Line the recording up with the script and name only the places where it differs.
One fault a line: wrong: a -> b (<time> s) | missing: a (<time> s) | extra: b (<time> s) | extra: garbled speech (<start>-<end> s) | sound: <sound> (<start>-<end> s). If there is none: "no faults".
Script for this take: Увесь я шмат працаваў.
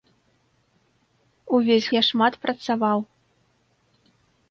no faults